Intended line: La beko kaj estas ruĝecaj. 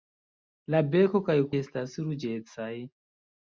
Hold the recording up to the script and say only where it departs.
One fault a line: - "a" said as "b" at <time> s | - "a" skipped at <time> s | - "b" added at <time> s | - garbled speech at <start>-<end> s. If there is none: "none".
none